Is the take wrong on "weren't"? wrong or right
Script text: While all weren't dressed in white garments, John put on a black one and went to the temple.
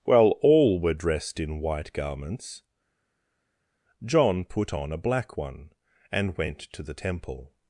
wrong